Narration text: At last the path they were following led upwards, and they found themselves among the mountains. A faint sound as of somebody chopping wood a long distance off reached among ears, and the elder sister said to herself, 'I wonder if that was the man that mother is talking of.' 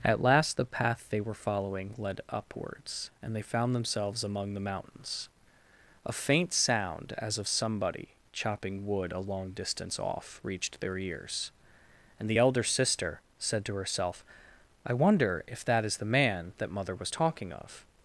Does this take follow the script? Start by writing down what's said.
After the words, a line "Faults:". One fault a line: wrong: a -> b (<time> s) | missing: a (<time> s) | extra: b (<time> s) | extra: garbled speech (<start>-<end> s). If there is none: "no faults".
At last the path they were following led upwards, and they found themselves among the mountains. A faint sound as of somebody chopping wood a long distance off reached their ears, and the elder sister said to herself, 'I wonder if that is the man that mother was talking of.'
Faults:
wrong: among -> their (10.8 s)
wrong: was -> is (15.9 s)
wrong: is -> was (17.0 s)